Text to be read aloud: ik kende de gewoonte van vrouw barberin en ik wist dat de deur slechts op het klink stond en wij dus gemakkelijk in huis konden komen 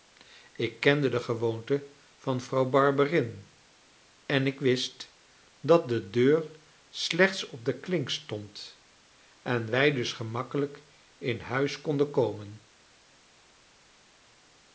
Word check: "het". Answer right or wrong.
wrong